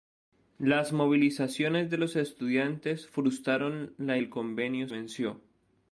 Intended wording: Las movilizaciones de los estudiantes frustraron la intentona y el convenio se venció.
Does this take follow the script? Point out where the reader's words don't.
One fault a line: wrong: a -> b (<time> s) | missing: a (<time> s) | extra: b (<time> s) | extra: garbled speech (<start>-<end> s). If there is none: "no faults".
missing: intentona y (4.2 s)
missing: se (4.9 s)